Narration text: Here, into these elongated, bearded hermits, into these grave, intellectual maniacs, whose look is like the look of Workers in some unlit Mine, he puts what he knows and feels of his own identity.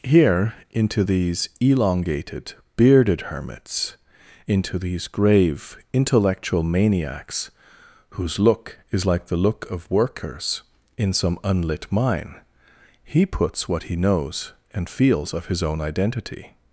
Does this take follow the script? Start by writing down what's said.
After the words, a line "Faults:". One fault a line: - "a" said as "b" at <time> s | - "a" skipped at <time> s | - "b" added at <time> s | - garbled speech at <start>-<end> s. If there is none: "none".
Here, into these elongated, bearded hermits, into these grave, intellectual maniacs, whose look is like the look of Workers in some unlit Mine, he puts what he knows and feels of his own identity.
Faults:
none